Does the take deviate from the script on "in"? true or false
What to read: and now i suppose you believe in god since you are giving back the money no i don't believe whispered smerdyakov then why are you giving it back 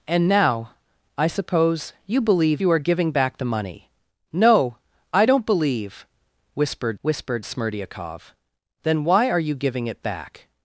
true